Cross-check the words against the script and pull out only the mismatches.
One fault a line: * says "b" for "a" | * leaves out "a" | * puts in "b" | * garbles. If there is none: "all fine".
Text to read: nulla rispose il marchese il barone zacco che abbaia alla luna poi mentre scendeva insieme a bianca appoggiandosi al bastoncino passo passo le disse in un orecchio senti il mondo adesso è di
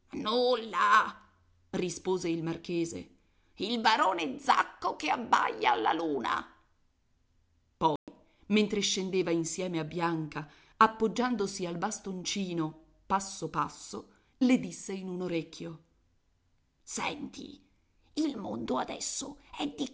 all fine